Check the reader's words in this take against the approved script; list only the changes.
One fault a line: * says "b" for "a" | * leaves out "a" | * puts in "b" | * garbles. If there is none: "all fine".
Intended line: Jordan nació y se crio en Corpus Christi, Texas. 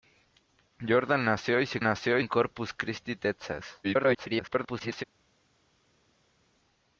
* says "nació" for "crio"
* garbles